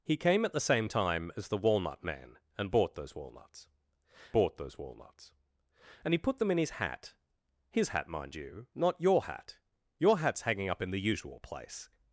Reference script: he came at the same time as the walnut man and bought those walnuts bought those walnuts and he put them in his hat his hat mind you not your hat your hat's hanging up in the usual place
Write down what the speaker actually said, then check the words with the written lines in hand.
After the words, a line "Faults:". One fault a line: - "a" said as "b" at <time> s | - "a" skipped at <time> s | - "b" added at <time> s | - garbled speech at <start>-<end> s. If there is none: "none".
he came at the same time as the walnut man and bought those walnuts bought those walnuts and he put them in his hat his hat mind you not your hat your hat's hanging up in the usual place
Faults:
none